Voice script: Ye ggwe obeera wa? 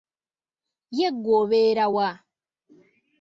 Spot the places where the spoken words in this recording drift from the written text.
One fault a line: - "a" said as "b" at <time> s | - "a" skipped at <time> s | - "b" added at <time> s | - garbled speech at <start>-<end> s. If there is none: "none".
none